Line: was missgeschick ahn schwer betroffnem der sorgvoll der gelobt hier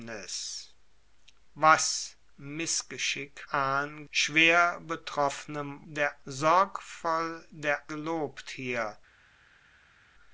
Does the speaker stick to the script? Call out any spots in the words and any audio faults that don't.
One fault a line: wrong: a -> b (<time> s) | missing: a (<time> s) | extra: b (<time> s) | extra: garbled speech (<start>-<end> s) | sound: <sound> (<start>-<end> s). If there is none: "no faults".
no faults